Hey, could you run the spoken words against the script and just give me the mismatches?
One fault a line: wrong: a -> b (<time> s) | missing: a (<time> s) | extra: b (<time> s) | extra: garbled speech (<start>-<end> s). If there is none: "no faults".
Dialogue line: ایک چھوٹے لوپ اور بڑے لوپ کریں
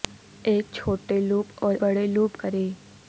no faults